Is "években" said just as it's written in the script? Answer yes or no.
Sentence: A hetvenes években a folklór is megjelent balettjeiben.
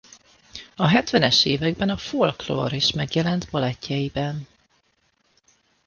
yes